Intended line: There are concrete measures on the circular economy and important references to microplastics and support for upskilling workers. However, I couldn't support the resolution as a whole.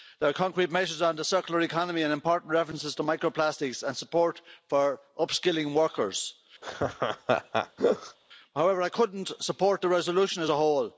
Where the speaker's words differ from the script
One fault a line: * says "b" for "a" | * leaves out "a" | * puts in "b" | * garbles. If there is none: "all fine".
all fine